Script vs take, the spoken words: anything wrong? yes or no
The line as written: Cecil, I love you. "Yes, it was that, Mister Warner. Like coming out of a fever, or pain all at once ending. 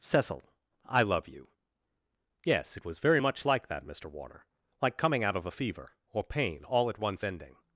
yes